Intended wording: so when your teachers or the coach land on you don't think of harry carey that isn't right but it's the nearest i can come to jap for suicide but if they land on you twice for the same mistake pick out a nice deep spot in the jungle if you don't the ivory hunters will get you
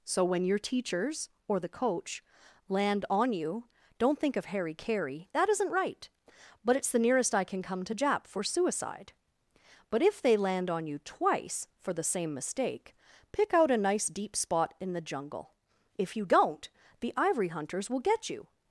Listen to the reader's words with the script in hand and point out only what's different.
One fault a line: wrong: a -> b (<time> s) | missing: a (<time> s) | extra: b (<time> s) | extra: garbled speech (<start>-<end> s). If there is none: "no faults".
no faults